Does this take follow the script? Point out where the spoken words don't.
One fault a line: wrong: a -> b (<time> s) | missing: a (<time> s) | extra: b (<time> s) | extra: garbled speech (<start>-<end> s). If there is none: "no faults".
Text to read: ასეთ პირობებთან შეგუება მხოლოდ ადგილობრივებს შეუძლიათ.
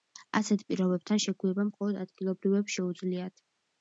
no faults